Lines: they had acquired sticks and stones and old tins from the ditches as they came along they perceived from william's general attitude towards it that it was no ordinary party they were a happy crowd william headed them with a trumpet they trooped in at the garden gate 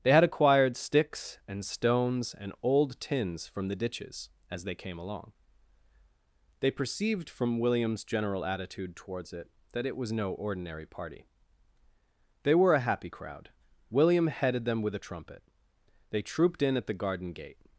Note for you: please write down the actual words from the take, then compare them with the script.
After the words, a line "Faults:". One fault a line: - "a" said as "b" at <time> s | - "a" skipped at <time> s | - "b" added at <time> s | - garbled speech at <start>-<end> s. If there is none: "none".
they had acquired sticks and stones and old tins from the ditches as they came along they perceived from william's general attitude towards it that it was no ordinary party they were a happy crowd william headed them with a trumpet they trooped in at the garden gate
Faults:
none